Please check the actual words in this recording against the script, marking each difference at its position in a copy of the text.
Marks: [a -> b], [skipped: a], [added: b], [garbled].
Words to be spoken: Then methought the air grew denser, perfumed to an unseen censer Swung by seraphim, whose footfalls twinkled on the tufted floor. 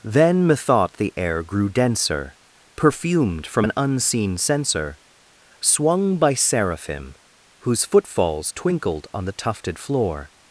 Then methought the air grew denser, perfumed [to -> from] an unseen censer Swung by seraphim, whose footfalls twinkled on the tufted floor.